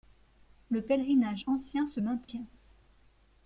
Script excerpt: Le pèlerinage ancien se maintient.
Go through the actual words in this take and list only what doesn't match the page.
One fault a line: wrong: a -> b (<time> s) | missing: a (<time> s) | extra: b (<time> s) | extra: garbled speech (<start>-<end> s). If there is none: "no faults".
no faults